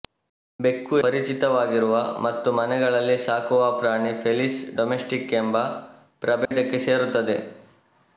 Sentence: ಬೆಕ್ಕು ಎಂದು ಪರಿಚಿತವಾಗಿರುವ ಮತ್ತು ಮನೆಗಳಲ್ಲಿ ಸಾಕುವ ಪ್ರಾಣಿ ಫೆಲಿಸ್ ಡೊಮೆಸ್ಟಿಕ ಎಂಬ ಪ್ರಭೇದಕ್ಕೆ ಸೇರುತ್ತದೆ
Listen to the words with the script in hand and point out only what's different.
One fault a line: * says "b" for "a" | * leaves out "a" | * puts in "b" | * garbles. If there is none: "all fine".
* leaves out "ಎಂದು"